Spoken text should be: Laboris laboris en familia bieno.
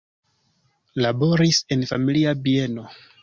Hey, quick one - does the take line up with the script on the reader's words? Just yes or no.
no